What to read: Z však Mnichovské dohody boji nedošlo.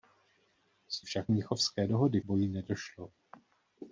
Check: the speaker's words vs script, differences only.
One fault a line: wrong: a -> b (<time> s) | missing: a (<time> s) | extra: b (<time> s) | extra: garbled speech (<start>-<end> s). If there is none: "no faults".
no faults